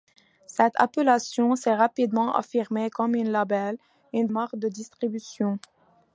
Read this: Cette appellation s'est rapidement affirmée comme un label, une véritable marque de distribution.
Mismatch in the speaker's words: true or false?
true